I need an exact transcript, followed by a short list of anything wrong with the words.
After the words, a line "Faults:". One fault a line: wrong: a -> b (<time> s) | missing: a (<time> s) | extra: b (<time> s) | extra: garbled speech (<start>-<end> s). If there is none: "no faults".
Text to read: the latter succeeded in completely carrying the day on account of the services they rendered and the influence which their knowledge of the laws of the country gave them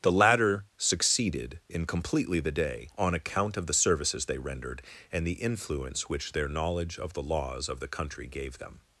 the latter succeeded in completely the day on account of the services they rendered and the influence which their knowledge of the laws of the country gave them
Faults:
missing: carrying (2.4 s)